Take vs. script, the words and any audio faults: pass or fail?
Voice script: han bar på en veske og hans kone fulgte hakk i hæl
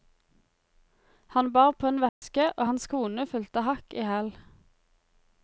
fail